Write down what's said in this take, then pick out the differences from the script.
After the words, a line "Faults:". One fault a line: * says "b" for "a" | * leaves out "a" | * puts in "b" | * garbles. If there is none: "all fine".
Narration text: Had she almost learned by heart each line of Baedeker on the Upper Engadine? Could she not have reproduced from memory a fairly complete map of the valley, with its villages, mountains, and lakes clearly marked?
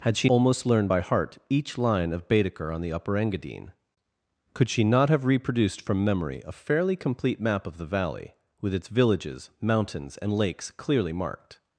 Had she almost learned by heart each line of Baedeker on the Upper Engadine? Could she not have reproduced from memory a fairly complete map of the valley, with its villages, mountains, and lakes clearly marked?
Faults:
all fine